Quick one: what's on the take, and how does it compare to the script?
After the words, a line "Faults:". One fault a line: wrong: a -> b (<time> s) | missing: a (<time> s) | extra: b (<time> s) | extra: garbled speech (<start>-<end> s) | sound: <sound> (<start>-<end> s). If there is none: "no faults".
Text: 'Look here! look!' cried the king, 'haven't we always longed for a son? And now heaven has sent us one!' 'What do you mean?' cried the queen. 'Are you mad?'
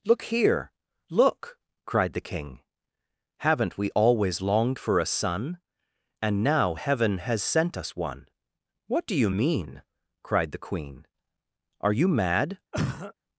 'Look here! look!' cried the king, 'haven't we always longed for a son? And now heaven has sent us one!' 'What do you mean?' cried the queen. 'Are you mad?'
Faults:
sound: cough (12.7-13.1 s)